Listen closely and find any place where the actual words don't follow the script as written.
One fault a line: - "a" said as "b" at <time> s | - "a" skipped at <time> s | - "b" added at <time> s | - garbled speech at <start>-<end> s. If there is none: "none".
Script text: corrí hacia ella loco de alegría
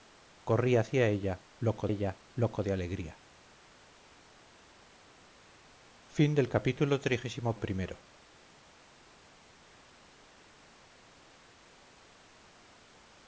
- "ella loco" added at 1.9 s